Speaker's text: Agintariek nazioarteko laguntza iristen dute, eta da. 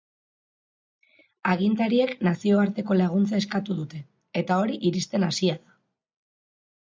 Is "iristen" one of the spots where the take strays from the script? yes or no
yes